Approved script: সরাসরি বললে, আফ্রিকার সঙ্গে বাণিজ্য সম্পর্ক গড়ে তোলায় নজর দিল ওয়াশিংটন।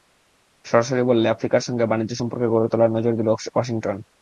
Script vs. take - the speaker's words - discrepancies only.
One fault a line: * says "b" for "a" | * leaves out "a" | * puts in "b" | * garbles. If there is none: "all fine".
all fine